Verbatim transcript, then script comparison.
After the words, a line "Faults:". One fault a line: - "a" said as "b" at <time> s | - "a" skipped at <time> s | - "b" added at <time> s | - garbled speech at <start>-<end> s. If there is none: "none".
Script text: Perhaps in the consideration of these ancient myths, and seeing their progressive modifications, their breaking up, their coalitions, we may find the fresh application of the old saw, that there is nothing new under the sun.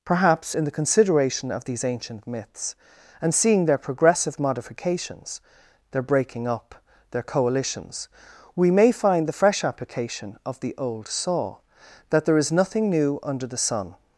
Perhaps in the consideration of these ancient myths, and seeing their progressive modifications, their breaking up, their coalitions, we may find the fresh application of the old saw, that there is nothing new under the sun.
Faults:
none